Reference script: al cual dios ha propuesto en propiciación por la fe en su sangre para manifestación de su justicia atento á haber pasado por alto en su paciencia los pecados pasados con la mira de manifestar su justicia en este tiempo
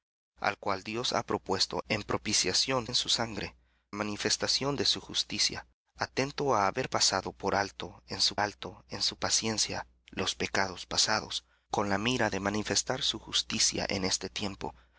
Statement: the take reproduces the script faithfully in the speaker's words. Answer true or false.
false